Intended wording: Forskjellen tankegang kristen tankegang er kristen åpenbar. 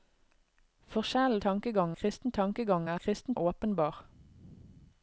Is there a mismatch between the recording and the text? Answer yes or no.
no